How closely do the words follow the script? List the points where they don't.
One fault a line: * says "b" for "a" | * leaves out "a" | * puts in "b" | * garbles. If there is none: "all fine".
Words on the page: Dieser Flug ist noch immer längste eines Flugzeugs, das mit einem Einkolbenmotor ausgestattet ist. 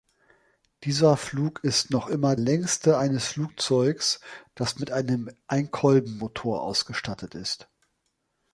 all fine